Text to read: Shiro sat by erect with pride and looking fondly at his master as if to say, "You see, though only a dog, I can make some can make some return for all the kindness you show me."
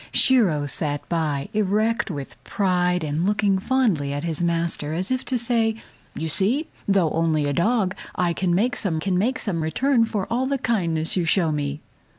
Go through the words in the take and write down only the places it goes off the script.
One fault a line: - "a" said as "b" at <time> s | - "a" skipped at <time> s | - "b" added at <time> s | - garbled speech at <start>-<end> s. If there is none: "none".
none